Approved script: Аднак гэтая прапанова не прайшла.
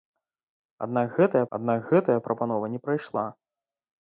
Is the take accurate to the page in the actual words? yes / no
no